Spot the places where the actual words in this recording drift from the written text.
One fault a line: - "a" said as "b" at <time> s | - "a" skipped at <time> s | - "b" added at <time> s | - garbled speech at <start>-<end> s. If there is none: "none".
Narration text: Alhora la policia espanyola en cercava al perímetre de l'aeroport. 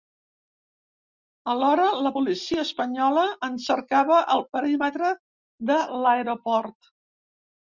none